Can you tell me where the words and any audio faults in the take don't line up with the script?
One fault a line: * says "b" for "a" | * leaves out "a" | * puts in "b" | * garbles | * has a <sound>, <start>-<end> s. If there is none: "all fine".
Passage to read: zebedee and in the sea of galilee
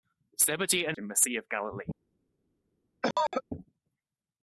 * has a cough, 3.0-3.4 s